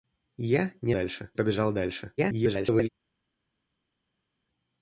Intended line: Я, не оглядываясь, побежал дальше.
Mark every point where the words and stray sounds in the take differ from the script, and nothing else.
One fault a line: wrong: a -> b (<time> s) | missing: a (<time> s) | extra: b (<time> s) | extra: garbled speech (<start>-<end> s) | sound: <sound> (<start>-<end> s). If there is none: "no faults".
wrong: оглядываясь -> дальше (0.9 s)
extra: garbled speech (2.2-2.9 s)